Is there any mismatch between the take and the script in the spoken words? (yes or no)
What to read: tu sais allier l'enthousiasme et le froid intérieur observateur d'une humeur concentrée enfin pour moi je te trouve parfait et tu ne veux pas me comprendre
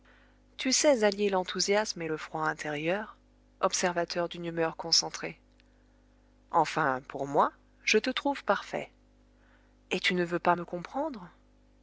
no